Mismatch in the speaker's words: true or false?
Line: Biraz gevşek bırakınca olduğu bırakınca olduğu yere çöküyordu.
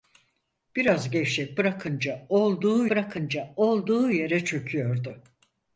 false